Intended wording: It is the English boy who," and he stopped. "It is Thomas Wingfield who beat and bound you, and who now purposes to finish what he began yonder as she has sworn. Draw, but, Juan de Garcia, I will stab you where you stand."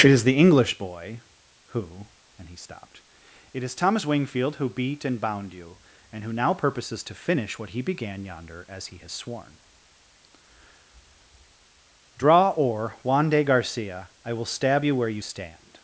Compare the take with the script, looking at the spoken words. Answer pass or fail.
fail